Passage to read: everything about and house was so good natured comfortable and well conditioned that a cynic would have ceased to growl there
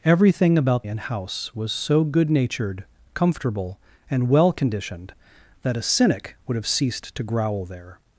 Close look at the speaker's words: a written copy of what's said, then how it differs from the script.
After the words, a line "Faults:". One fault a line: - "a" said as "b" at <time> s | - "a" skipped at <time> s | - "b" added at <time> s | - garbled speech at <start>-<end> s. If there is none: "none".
everything about and house was so good natured comfortable and well conditioned that a cynic would have ceased to growl there
Faults:
none